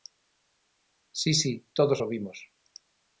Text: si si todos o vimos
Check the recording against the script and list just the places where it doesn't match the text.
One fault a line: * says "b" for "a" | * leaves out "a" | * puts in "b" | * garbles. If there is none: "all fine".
all fine